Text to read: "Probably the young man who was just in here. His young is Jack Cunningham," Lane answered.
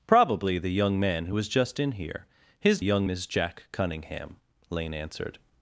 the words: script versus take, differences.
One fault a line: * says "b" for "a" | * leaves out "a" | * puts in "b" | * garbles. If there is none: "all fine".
all fine